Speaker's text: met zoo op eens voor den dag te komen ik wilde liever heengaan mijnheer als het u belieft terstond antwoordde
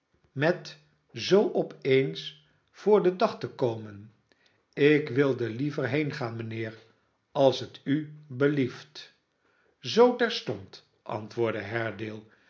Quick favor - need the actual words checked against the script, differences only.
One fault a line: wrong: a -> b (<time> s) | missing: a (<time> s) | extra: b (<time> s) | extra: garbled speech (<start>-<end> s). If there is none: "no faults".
extra: zoo (9.8 s)